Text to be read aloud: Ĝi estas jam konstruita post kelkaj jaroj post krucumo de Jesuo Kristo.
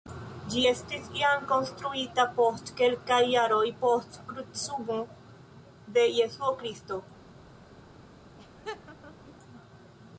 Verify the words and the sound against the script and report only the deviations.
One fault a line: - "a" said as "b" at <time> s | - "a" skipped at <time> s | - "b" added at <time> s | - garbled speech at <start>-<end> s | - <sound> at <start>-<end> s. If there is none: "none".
- "estas" said as "estis" at 0.7 s
- laugh at 8.4-9.3 s